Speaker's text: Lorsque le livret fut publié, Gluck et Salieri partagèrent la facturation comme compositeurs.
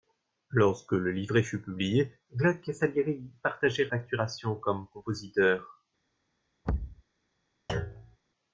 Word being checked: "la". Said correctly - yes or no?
no